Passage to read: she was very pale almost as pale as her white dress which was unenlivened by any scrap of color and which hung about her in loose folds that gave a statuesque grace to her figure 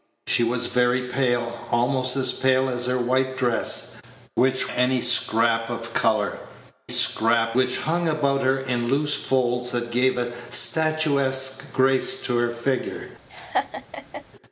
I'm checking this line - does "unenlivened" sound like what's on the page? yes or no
no